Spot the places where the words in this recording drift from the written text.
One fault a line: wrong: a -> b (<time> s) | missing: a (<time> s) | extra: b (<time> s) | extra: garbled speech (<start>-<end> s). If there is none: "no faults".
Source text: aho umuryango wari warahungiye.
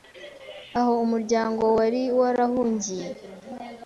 no faults